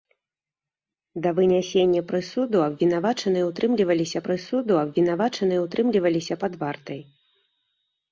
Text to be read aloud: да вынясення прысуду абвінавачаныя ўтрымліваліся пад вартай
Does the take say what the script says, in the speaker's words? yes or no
no